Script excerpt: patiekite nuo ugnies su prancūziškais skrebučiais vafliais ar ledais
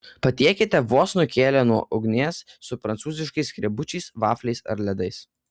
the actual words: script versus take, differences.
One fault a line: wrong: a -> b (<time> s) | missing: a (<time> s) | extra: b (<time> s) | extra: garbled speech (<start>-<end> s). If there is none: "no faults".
extra: vos nukėlę (0.9 s)